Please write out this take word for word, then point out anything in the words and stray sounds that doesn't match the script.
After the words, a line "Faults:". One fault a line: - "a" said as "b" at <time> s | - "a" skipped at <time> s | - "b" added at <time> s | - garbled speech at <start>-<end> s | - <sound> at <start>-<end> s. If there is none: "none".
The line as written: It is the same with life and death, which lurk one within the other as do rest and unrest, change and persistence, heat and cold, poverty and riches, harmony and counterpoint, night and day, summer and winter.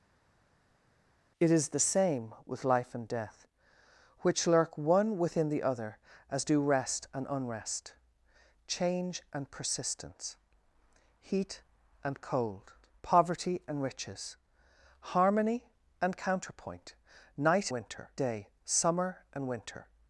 It is the same with life and death, which lurk one within the other as do rest and unrest, change and persistence, heat and cold, poverty and riches, harmony and counterpoint, night winter day, summer and winter.
Faults:
- "and" said as "winter" at 17.7 s